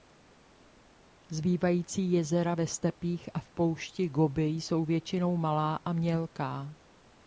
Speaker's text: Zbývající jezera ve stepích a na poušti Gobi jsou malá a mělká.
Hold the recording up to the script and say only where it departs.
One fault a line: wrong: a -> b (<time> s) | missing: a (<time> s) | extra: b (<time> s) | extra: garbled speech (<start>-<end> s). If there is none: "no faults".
wrong: na -> v (3.4 s)
extra: většinou (4.9 s)